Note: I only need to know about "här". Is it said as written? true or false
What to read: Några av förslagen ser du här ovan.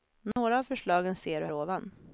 false